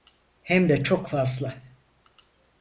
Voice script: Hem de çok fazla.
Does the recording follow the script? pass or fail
pass